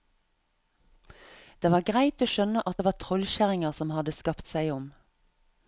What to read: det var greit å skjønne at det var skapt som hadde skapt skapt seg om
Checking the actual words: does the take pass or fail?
fail